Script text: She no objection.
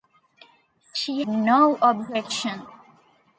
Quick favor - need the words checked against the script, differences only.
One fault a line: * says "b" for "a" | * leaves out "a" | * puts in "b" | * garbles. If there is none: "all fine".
all fine